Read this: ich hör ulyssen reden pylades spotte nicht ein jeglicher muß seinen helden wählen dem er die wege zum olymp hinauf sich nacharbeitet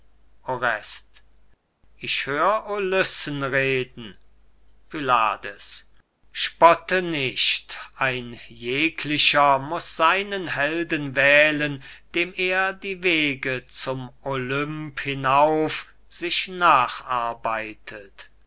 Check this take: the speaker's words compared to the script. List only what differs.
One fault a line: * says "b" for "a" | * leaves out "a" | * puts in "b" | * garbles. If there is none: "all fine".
all fine